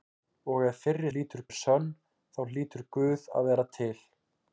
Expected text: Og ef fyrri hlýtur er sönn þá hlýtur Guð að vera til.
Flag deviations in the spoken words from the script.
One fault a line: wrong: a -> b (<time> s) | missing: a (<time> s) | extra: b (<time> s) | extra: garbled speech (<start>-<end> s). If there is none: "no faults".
no faults